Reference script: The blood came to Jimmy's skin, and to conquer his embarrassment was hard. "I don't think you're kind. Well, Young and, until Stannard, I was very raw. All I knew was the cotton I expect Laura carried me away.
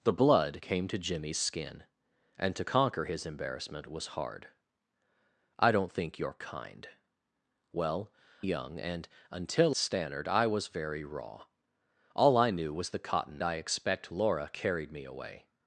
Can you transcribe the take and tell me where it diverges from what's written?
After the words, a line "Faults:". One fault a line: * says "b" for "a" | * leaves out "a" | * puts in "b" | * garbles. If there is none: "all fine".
The blood came to Jimmy's skin, and to conquer his embarrassment was hard. "I don't think you're kind. Well, Young and, until Stannard, I was very raw. All I knew was the cotton I expect Laura carried me away.
Faults:
all fine